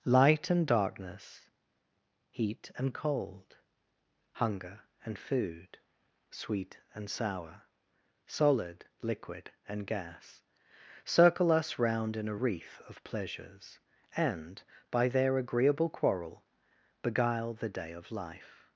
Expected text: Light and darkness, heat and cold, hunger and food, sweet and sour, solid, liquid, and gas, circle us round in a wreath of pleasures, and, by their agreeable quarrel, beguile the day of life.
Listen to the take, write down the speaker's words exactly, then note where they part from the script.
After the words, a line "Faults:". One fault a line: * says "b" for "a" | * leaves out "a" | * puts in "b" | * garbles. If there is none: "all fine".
Light and darkness, heat and cold, hunger and food, sweet and sour, solid, liquid, and gas, circle us round in a wreath of pleasures, and, by their agreeable quarrel, beguile the day of life.
Faults:
all fine